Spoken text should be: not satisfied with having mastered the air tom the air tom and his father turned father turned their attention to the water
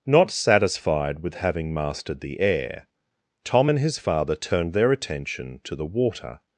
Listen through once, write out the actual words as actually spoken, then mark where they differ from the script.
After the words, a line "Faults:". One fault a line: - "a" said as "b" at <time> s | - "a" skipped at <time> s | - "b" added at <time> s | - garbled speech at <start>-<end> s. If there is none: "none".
not satisfied with having mastered the air tom and his father turned their attention to the water
Faults:
- "the air tom" skipped at 3.7 s
- "father turned" skipped at 4.7 s